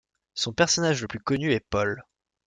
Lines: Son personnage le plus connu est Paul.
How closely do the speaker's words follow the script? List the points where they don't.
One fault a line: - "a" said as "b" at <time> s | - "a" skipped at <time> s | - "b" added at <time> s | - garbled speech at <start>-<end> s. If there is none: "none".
none